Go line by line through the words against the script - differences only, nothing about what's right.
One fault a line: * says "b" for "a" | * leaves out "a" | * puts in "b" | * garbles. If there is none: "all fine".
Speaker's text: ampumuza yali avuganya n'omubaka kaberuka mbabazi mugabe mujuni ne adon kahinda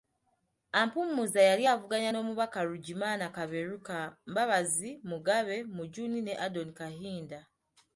* puts in "ruggimana"